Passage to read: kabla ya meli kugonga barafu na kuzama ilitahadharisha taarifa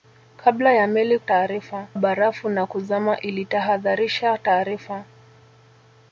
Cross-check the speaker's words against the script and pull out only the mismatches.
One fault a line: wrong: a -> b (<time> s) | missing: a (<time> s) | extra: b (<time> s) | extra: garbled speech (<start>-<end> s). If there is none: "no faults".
wrong: kugonga -> taarifa (1.2 s)